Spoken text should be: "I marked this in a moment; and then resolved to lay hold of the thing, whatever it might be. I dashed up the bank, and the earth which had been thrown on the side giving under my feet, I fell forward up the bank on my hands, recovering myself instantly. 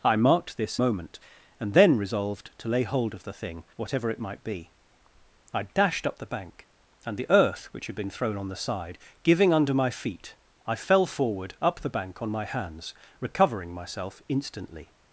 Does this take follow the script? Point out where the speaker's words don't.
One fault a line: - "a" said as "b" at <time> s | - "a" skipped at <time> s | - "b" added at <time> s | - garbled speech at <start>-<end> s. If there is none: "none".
- "in a" skipped at 0.8 s